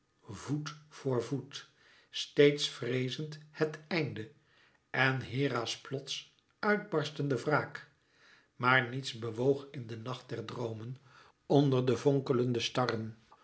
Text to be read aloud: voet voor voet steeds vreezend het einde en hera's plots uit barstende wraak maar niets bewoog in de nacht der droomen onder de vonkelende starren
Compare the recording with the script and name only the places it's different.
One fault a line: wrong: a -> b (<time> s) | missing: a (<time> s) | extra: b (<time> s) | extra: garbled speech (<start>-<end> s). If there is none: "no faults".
no faults